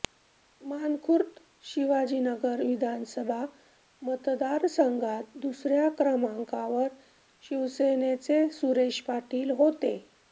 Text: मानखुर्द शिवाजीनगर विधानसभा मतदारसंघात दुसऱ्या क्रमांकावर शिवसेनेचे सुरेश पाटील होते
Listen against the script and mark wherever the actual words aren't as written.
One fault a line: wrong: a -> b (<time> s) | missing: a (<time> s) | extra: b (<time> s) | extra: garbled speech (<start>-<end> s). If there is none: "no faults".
no faults